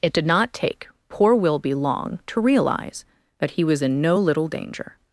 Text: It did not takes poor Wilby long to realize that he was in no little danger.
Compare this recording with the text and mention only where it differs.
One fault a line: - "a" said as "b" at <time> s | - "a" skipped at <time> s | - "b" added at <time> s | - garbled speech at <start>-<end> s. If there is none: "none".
- "takes" said as "take" at 0.5 s